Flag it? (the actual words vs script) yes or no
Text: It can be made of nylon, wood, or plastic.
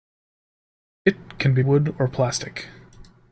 yes